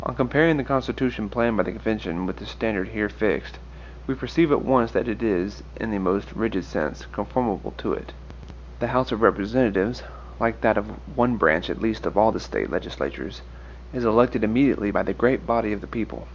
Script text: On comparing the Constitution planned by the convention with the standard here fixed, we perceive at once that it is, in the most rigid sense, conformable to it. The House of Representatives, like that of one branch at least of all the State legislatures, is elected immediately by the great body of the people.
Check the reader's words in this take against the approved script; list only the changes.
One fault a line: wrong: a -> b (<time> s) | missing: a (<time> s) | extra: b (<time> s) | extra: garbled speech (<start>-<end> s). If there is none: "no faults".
no faults